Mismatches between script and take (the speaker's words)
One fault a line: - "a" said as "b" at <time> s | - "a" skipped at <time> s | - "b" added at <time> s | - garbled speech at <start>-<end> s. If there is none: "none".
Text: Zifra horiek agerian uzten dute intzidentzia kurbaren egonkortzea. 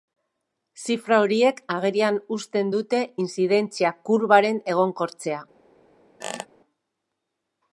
none